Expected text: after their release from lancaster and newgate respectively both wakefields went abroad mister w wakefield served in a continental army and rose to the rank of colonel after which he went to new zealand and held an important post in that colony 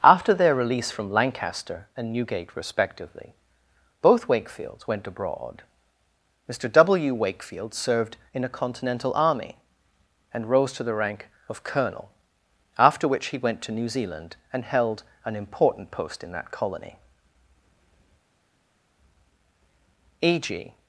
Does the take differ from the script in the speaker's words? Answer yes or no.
yes